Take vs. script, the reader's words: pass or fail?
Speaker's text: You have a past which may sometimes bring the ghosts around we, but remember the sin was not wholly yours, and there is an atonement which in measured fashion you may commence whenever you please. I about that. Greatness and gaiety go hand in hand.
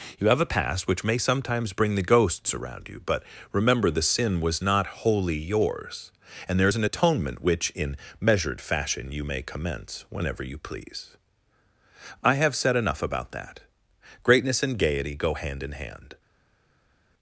fail